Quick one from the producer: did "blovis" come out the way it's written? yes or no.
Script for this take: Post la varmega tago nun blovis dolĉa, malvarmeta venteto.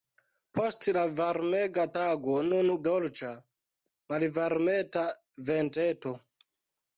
no